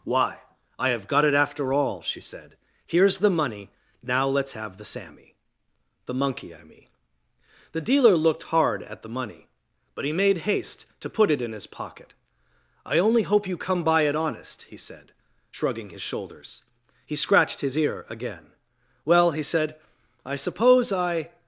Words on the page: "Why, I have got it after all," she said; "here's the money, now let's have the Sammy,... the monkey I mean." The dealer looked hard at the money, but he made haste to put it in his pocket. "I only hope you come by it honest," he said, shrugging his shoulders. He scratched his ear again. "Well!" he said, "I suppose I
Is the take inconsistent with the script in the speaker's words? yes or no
no